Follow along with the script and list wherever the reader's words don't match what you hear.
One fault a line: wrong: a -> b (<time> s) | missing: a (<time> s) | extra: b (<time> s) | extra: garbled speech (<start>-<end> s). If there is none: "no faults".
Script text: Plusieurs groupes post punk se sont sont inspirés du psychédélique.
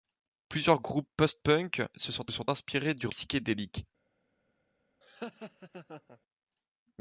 no faults